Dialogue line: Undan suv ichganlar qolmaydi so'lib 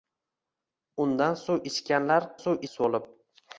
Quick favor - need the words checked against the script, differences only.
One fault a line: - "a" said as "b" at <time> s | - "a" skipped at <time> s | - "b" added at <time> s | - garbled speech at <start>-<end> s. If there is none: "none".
- "qolmaydi" said as "suv" at 2.4 s